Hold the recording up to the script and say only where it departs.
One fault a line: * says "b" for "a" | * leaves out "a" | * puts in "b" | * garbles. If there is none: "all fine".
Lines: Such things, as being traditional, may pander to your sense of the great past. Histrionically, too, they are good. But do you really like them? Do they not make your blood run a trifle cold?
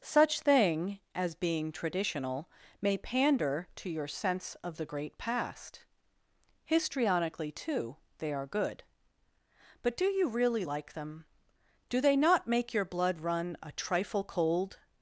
* says "thing" for "things"